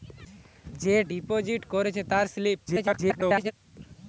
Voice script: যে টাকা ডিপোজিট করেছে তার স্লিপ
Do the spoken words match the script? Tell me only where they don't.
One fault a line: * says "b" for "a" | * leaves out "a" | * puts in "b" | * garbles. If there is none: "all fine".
* leaves out "টাকা"
* garbles